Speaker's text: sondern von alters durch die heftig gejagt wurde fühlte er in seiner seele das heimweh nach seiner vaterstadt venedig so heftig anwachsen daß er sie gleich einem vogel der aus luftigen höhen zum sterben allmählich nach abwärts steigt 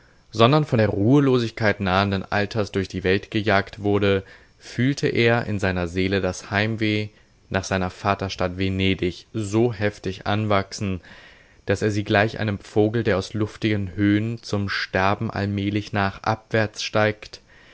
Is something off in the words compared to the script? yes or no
yes